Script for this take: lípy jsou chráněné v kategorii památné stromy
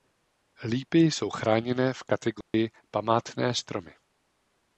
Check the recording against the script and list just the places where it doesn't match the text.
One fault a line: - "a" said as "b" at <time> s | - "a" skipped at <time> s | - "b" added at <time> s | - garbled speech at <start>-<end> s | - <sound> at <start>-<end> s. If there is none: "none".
- dropout at 2.4-2.5 s